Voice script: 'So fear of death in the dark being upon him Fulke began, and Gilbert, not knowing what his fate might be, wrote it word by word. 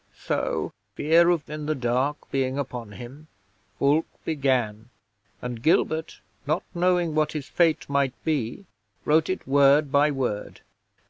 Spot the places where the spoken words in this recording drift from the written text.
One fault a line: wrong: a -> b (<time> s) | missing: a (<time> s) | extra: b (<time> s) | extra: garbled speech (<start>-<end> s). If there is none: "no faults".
missing: death (1.5 s)